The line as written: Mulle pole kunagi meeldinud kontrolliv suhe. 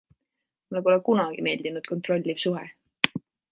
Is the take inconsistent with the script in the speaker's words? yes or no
no